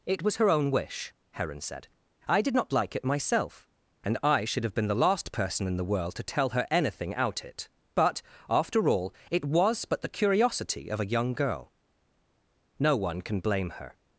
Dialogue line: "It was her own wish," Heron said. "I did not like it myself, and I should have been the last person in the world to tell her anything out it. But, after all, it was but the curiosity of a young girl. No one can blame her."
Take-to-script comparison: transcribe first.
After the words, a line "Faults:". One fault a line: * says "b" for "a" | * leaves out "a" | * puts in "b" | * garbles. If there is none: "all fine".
"It was her own wish," Heron said. "I did not like it myself, and I should have been the last person in the world to tell her anything out it. But, after all, it was but the curiosity of a young girl. No one can blame her."
Faults:
all fine